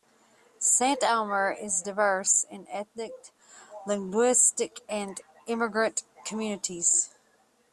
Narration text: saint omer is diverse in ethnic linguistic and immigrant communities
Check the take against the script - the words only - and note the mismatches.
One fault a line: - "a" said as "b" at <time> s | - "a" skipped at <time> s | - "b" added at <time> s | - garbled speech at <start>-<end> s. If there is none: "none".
none